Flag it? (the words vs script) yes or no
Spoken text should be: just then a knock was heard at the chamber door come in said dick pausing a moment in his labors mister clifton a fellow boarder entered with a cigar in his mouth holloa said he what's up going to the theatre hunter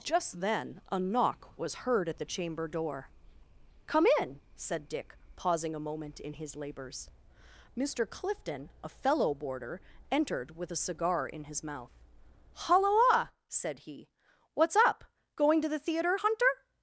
no